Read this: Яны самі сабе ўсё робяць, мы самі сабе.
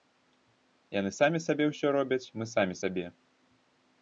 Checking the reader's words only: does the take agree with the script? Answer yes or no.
yes